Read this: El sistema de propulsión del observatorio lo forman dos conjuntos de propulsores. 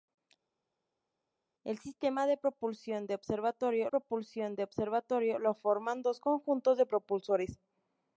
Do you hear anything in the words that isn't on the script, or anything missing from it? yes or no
yes